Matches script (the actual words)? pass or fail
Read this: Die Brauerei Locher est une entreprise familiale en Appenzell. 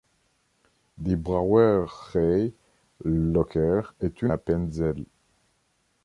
fail